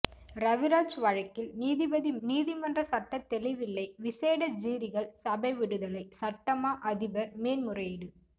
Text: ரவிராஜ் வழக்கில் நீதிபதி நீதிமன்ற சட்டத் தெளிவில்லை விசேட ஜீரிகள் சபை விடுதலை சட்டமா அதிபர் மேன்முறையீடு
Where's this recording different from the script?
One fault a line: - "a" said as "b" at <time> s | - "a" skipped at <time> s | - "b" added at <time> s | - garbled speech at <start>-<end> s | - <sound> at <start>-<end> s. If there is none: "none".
none